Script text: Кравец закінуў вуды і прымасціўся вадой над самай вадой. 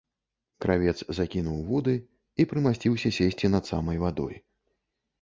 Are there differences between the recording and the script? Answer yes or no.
yes